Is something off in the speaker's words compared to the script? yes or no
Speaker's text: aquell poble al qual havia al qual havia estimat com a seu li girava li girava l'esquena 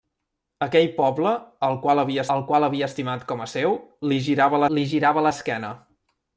no